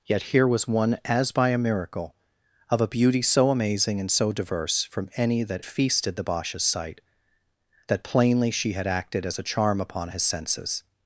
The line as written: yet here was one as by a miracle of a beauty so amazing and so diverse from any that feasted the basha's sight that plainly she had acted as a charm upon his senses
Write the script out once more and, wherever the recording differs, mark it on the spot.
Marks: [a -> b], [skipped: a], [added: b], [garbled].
yet here was one as by a miracle of a beauty so amazing and so diverse from any that feasted the basha's sight that plainly she had acted as a charm upon his senses